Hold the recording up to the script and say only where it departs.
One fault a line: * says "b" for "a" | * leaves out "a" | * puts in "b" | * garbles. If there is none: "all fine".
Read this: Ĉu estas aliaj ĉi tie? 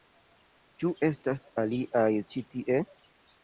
all fine